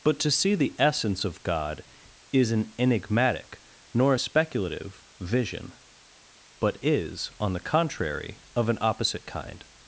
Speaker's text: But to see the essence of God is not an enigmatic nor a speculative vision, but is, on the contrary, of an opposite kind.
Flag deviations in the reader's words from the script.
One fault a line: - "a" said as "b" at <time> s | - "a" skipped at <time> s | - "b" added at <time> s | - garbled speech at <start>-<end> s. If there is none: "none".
- "not" skipped at 2.5 s